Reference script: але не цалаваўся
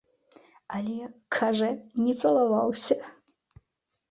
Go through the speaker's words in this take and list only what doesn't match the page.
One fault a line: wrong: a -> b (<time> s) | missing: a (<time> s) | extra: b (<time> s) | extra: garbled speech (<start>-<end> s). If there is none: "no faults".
extra: кажа (1.4 s)